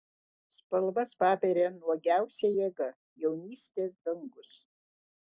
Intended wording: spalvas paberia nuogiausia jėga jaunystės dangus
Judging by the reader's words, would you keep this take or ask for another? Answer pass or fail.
pass